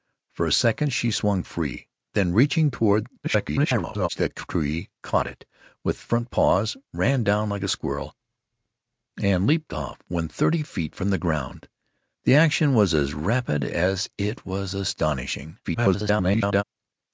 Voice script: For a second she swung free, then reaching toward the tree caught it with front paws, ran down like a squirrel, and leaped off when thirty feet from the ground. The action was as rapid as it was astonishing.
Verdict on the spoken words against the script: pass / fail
fail